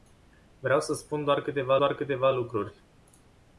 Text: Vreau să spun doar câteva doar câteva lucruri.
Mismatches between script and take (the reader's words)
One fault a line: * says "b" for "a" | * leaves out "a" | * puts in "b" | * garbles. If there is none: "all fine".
all fine